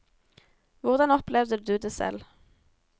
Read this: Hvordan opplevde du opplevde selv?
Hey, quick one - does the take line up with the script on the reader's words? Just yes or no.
no